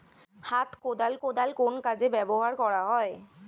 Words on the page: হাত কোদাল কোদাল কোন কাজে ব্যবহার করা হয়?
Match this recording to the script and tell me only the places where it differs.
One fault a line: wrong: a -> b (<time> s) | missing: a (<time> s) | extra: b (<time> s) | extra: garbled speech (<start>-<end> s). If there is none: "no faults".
no faults